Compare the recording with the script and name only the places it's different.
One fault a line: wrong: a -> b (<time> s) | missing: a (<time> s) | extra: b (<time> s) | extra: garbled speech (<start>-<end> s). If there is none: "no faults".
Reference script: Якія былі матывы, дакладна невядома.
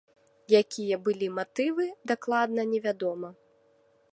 no faults